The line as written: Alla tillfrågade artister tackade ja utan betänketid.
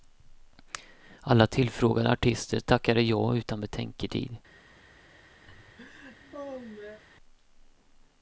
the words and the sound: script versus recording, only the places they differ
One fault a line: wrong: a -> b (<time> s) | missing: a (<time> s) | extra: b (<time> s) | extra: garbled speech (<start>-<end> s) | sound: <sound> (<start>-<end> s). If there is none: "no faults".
sound: laugh (5.5-7.0 s)